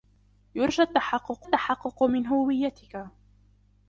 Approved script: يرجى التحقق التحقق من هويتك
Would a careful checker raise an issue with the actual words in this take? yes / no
no